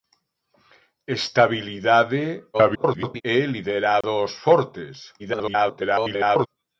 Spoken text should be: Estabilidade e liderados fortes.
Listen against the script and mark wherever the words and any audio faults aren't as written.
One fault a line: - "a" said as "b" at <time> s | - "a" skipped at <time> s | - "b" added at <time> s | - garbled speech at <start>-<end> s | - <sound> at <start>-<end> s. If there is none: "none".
- garbled speech at 2.5-3.2 s
- dropout at 4.0-4.0 s
- garbled speech at 5.2-6.5 s